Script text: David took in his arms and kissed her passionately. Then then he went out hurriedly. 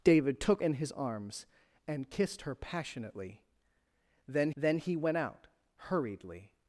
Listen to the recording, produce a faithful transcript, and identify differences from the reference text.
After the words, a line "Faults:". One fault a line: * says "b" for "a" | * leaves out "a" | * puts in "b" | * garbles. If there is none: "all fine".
David took in his arms and kissed her passionately. Then then he went out hurriedly.
Faults:
all fine